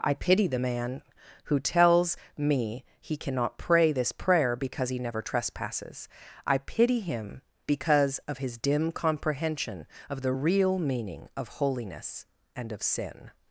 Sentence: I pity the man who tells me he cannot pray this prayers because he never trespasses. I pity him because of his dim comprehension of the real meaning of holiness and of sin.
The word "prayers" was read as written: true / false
false